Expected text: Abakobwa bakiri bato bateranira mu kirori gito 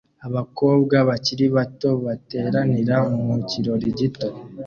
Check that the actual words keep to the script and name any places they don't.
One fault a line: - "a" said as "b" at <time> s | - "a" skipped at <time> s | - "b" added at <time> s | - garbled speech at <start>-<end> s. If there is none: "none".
none